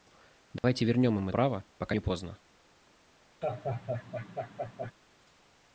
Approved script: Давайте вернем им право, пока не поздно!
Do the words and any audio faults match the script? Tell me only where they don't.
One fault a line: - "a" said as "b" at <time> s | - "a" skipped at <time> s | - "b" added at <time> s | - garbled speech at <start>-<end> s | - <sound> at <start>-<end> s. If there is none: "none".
- dropout at 0.6-0.6 s
- laugh at 3.4-4.9 s